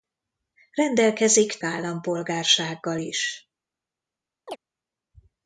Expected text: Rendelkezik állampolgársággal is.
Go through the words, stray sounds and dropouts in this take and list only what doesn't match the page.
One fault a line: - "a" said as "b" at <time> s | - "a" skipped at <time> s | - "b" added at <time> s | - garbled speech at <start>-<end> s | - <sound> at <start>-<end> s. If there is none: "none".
- chirp at 4.5-4.6 s